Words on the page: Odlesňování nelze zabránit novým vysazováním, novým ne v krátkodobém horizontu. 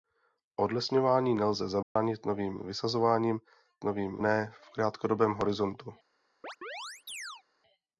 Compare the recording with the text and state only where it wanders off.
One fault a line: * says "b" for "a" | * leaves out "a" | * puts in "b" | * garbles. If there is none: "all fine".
all fine